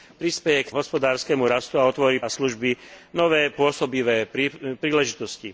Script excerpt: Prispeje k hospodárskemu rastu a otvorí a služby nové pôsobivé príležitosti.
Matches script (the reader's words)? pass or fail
pass